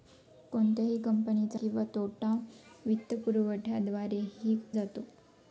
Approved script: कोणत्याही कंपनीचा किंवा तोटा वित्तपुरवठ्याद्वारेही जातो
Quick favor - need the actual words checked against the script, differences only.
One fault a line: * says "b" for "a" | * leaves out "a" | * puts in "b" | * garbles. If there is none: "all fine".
all fine